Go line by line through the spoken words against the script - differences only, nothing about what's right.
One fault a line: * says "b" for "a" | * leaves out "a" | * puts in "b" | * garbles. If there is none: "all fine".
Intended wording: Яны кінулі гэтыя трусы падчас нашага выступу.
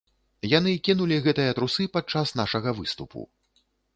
all fine